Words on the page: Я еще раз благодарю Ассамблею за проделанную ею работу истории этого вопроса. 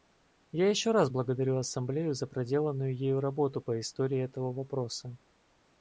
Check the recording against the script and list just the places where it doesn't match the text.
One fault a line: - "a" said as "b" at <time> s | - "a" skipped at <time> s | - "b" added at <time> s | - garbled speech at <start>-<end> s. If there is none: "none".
- "по" added at 3.6 s